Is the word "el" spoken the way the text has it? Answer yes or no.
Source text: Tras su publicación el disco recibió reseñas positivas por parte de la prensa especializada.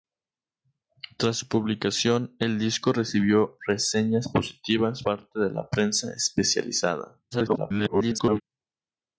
yes